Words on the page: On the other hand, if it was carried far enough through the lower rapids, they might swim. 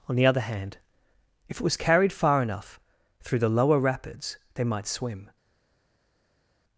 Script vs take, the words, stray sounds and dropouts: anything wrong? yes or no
no